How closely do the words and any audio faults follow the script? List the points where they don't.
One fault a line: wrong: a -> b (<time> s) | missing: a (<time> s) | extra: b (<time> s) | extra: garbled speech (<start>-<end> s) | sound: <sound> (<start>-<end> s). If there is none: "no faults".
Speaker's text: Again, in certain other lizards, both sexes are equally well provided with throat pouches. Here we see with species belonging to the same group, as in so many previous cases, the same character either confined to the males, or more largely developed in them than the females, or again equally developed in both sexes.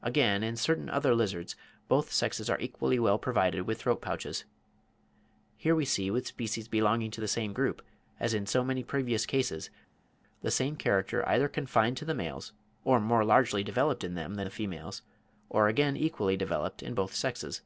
no faults